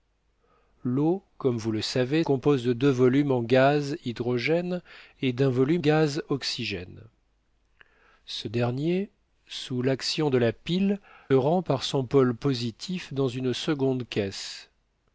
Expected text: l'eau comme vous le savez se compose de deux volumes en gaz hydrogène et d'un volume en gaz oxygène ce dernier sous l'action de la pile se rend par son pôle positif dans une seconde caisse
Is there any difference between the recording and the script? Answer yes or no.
yes